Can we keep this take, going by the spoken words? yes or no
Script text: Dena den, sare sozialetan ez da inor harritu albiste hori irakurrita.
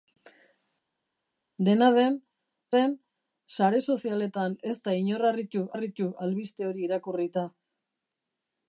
no